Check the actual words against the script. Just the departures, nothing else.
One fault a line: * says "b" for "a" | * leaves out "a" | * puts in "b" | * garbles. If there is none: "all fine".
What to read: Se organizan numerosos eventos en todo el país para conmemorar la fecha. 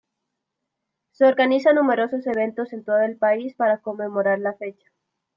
all fine